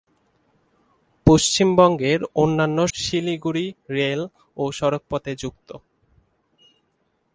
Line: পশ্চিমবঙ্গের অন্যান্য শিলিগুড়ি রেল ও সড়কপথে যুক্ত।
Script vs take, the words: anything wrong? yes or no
no